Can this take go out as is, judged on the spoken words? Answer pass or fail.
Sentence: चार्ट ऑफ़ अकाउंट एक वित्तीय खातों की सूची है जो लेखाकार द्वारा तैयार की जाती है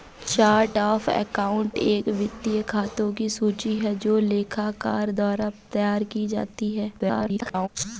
fail